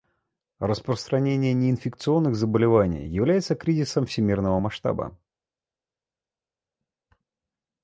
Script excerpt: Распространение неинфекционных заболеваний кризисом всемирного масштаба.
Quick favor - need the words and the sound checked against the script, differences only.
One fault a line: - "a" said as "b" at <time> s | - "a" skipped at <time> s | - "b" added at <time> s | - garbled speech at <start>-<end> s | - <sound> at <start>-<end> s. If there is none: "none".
- "является" added at 3.1 s